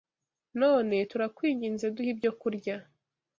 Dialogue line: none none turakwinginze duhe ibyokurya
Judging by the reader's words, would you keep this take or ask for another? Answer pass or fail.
fail